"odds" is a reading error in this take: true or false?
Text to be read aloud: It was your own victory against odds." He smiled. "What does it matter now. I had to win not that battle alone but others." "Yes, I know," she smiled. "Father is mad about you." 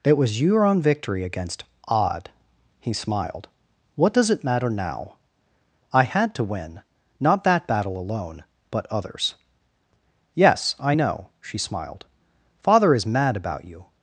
true